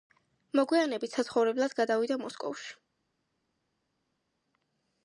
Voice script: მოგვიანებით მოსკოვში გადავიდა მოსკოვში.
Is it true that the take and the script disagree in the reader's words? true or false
true